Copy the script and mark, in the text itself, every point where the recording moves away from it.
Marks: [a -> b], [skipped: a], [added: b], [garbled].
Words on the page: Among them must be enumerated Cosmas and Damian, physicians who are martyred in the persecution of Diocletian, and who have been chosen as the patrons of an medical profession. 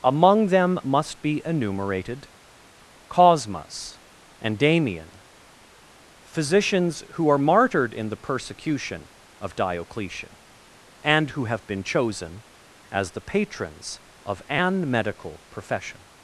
Among them must be enumerated Cosmas and Damian, physicians who are martyred in the persecution of Diocletian, and who have been chosen as the patrons of an medical profession.